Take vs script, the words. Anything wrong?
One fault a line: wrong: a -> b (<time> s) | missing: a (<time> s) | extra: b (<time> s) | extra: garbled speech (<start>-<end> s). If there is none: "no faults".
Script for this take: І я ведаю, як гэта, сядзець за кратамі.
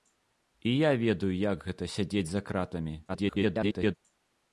extra: garbled speech (3.1-4.0 s)